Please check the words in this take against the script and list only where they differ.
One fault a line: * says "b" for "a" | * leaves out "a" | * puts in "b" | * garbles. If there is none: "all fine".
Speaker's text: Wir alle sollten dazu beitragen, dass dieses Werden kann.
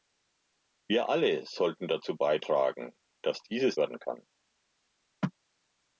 all fine